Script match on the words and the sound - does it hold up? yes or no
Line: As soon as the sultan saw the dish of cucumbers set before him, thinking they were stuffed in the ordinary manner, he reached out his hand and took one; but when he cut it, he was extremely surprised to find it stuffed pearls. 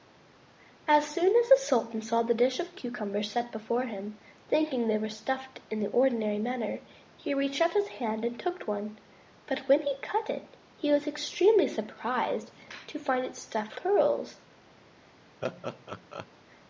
no